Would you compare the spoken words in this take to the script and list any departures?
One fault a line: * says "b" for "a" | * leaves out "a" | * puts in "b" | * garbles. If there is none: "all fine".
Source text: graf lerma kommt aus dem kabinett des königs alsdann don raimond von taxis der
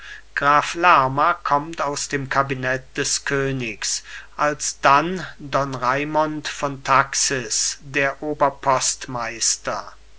all fine